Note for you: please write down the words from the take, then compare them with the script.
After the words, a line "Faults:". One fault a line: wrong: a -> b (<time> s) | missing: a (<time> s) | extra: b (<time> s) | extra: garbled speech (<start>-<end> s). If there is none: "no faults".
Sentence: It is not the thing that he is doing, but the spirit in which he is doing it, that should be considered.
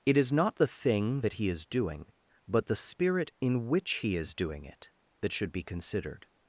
It is not the thing that he is doing, but the spirit in which he is doing it, that should be considered.
Faults:
no faults